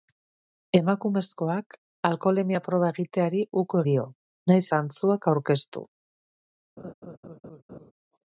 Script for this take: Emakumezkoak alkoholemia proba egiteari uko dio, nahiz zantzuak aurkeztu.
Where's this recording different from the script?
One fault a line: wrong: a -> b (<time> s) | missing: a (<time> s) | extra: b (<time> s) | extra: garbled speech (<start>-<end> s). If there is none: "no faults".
no faults